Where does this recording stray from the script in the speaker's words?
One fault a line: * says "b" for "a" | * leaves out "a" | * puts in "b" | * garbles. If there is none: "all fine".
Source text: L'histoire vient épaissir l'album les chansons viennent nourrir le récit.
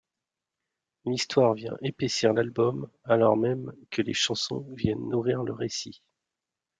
* puts in "alors même que"